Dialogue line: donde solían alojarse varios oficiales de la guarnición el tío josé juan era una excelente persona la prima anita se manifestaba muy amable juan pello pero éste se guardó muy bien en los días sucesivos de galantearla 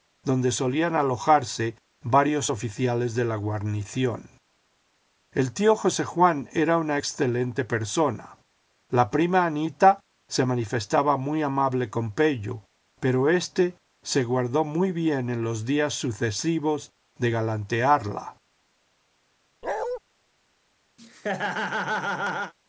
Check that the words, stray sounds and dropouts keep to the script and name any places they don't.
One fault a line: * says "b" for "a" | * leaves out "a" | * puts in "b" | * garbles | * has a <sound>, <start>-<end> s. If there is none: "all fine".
* says "con" for "juan"
* has a bark, 19.6-20.0 s
* has a laugh, 21.0-22.5 s